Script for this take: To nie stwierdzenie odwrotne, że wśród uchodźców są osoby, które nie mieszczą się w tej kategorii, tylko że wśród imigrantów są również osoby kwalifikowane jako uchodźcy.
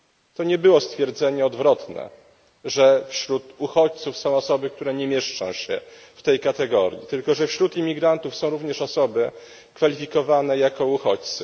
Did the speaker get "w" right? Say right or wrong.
right